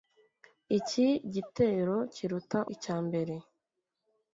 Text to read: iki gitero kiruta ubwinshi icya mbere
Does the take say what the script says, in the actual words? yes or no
no